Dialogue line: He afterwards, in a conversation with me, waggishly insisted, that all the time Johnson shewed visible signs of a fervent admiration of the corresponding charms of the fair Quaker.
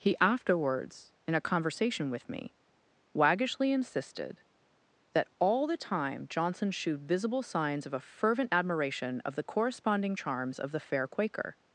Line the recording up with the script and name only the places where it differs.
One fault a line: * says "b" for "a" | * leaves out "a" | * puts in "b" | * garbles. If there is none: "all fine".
all fine